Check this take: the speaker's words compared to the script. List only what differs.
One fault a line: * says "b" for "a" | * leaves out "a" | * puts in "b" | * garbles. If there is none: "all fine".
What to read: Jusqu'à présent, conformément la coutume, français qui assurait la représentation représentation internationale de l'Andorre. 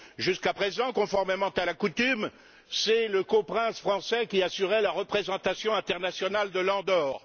* puts in "à"
* puts in "c'est le coprince"
* leaves out "représentation"